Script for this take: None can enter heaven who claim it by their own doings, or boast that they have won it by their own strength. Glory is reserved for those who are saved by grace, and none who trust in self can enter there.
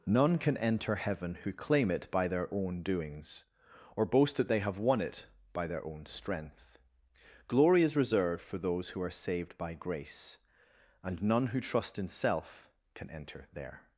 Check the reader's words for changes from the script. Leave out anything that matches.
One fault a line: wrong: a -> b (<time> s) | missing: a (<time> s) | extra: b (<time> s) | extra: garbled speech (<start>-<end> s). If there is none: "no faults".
no faults